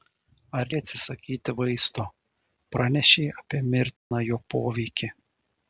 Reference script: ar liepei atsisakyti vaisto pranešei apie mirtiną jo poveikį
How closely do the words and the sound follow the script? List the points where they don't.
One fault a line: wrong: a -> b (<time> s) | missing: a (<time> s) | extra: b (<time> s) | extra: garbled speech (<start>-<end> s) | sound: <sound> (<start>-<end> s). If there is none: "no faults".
missing: liepei (0.7 s)
sound: dropout (4.0-4.1 s)